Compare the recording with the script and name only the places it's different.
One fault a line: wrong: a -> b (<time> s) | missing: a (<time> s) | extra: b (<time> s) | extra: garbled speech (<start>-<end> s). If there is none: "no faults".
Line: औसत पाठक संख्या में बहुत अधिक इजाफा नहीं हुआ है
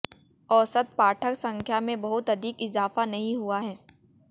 no faults